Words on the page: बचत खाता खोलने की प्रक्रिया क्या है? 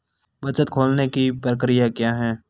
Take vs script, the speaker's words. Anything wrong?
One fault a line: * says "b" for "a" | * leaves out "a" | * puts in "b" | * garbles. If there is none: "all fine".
* leaves out "खाता"